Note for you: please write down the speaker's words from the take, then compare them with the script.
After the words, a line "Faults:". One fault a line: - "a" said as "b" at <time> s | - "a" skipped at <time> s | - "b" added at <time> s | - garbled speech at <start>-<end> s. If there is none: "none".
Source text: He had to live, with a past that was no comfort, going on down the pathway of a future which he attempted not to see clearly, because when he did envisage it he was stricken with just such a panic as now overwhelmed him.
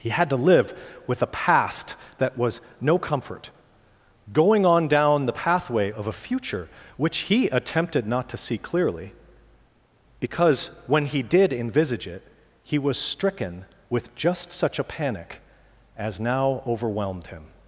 He had to live, with a past that was no comfort, going on down the pathway of a future which he attempted not to see clearly, because when he did envisage it he was stricken with just such a panic as now overwhelmed him.
Faults:
none